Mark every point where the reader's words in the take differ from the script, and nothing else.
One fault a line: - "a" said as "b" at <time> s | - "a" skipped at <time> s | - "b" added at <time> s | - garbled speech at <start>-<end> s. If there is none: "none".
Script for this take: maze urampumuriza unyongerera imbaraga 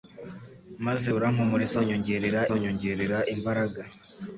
- "unyongerera" added at 2.6 s